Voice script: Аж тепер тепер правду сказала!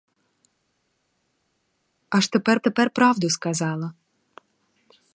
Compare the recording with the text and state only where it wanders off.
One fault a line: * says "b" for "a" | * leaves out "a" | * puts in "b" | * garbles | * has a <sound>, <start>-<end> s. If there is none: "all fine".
all fine